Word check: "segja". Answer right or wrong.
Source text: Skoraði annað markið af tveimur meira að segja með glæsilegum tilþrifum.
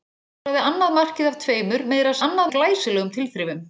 wrong